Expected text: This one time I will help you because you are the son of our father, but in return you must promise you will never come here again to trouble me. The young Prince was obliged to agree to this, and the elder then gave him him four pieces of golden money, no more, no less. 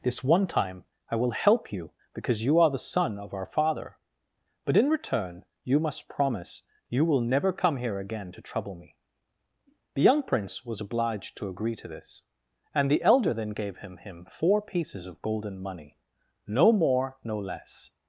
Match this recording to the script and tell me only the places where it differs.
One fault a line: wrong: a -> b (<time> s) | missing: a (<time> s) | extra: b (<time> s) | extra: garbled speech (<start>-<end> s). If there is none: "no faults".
no faults